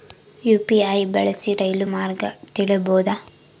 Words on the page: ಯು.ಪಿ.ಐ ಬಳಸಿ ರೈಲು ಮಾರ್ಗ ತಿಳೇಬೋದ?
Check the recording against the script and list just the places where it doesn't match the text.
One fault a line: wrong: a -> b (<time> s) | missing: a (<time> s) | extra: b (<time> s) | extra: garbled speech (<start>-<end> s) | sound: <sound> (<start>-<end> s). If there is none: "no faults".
no faults